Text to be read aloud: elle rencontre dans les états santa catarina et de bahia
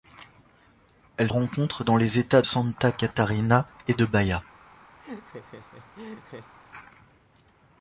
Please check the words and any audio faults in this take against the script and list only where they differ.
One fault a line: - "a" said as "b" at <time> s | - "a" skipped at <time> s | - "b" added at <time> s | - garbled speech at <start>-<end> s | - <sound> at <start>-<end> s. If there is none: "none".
- laugh at 5.0-6.5 s